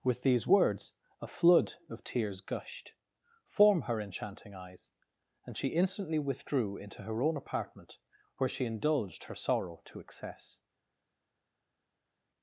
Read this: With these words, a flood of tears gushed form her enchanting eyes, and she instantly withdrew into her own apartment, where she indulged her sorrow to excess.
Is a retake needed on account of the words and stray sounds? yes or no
no